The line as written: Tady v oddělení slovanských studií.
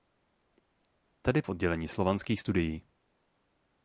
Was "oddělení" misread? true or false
false